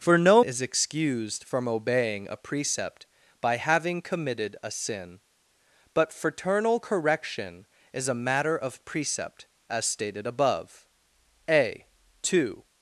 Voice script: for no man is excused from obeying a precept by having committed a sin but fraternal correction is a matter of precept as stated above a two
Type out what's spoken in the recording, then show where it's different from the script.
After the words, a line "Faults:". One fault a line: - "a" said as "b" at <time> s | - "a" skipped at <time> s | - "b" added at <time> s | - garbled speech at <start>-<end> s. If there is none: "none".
for no is excused from obeying a precept by having committed a sin but fraternal correction is a matter of precept as stated above a two
Faults:
- "man" skipped at 0.4 s